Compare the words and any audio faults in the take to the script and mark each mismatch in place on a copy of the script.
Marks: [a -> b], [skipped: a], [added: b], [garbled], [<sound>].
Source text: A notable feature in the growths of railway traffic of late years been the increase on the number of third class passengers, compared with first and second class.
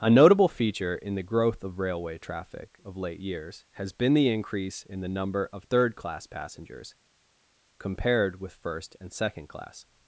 A notable feature in the [growths -> growth] of railway traffic of late years [added: has] been the increase [on -> in] the number of third class passengers, compared with first and second class.